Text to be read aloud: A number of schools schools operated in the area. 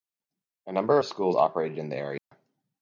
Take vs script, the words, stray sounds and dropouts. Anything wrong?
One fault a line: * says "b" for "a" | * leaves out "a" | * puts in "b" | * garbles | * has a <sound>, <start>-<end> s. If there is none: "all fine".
* leaves out "schools"
* has a dropout, 2.2-2.3 s